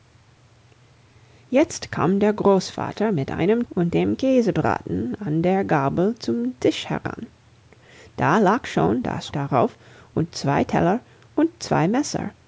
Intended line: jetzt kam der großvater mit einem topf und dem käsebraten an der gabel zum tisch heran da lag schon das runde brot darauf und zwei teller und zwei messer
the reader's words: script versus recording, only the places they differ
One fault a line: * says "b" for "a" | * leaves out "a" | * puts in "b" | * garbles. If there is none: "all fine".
* leaves out "topf"
* leaves out "runde brot"